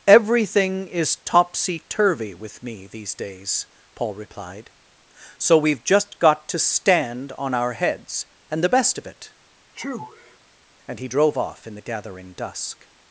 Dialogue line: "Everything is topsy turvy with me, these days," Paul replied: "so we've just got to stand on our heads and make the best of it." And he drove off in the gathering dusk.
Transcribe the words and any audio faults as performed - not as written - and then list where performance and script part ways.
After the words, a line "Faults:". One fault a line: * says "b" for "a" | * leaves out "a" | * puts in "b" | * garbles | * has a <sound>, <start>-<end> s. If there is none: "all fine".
"Everything is topsy turvy with me, these days," Paul replied: "so we've just got to stand on our heads and the best of it." And he drove off in the gathering dusk.
Faults:
* leaves out "make"
* has a sneeze, 9.7-10.4 s